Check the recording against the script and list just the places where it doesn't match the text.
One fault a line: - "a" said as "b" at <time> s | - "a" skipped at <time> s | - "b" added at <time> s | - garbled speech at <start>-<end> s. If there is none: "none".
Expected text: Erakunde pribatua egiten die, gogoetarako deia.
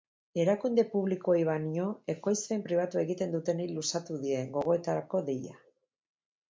- "publikoei baino ekoizpen" added at 0.9 s
- "dutenei luzatu" added at 3.4 s